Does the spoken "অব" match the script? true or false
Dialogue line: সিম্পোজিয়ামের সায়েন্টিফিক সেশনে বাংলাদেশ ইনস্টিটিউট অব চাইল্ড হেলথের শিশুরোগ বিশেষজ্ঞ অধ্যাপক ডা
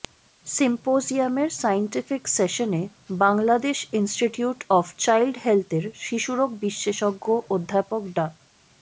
true